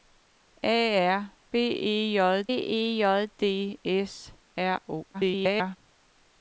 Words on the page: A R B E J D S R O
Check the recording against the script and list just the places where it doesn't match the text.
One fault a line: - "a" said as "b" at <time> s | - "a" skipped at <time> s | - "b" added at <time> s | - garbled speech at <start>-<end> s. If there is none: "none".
- "E J" added at 2.5 s
- garbled speech at 5.1-5.8 s